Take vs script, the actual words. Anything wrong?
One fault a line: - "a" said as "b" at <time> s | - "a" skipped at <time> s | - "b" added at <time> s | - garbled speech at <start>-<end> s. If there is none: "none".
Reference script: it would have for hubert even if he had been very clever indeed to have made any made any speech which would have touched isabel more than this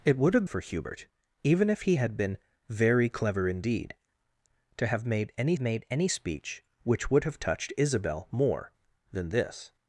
none